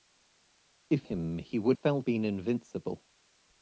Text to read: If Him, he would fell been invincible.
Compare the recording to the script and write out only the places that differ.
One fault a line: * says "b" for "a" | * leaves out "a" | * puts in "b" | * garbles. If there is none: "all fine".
all fine